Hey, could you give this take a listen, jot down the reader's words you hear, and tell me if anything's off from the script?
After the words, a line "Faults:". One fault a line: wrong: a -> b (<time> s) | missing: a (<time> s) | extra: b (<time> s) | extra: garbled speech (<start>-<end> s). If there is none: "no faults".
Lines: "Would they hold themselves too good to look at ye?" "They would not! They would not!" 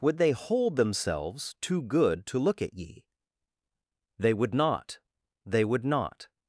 "Would they hold themselves too good to look at ye?" "They would not! They would not!"
Faults:
no faults